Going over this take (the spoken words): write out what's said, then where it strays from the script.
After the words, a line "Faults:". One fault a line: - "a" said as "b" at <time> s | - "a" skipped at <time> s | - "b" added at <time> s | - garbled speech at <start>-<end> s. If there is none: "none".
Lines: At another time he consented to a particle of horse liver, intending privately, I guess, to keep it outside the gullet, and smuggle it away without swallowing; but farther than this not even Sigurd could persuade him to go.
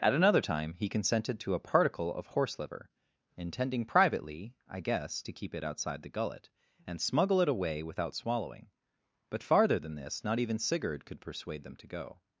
At another time he consented to a particle of horse liver, intending privately, I guess, to keep it outside the gullet, and smuggle it away without swallowing; but farther than this not even Sigurd could persuade them to go.
Faults:
- "him" said as "them" at 11.6 s